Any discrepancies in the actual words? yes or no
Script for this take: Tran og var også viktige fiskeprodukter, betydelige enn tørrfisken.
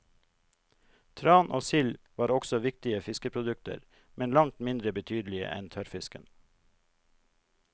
yes